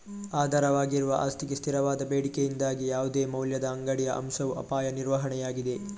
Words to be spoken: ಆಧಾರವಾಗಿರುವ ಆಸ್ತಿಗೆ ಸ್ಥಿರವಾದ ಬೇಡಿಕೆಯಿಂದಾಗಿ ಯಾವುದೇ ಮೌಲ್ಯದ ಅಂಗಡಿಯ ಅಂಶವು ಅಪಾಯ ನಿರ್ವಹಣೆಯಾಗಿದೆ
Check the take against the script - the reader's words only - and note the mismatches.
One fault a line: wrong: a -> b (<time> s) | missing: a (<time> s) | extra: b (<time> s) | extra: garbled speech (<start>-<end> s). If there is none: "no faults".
no faults